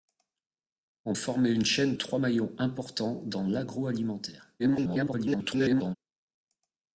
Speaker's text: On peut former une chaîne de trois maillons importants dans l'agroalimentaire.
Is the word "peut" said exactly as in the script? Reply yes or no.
no